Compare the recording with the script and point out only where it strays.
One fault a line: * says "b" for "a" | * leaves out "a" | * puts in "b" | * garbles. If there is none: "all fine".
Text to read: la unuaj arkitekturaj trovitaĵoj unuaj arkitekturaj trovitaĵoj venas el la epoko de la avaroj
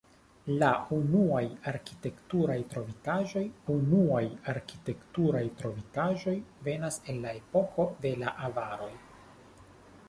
all fine